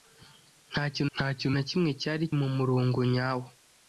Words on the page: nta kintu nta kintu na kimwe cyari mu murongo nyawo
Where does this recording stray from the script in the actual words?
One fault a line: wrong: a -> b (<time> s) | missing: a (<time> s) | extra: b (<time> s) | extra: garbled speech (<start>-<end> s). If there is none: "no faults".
no faults